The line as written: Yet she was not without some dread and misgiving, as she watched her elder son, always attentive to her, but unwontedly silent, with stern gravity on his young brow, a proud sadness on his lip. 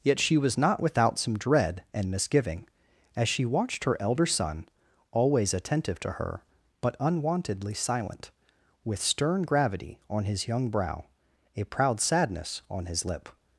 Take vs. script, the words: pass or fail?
pass